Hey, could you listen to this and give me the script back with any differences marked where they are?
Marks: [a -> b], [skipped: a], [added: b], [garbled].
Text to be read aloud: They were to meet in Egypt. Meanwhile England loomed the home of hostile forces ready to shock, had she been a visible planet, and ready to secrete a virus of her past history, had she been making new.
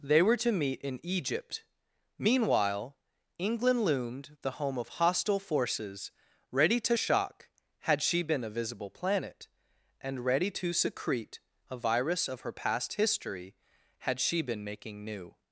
They were to meet in Egypt. Meanwhile England loomed the home of hostile forces ready to shock, had she been a visible planet, and ready to secrete a virus of her past history, had she been making new.